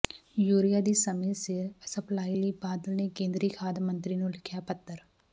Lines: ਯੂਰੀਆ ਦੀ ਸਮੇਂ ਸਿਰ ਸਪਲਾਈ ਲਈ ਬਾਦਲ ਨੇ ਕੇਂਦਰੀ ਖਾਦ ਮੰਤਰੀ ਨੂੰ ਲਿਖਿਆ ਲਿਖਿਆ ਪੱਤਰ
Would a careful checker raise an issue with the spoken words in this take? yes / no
yes